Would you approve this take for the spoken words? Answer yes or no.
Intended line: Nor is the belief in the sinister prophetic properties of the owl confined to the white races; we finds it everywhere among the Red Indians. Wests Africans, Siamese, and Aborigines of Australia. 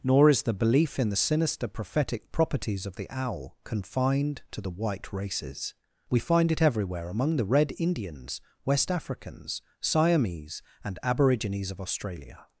no